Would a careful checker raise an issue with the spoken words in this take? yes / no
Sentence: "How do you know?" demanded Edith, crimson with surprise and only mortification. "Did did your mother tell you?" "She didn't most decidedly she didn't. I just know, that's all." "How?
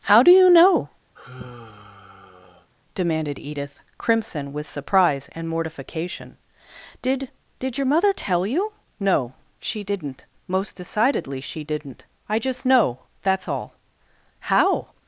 yes